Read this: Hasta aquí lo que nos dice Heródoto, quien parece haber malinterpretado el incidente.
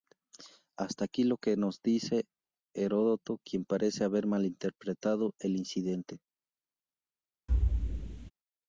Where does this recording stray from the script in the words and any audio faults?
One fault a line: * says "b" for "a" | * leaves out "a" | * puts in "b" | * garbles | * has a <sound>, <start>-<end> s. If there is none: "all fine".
* has a thud, 7.5-8.3 s